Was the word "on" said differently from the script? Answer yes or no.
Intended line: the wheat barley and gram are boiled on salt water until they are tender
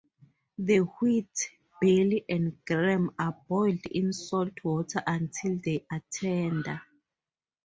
yes